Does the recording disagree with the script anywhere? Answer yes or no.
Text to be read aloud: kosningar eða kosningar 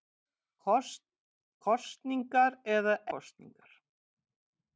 no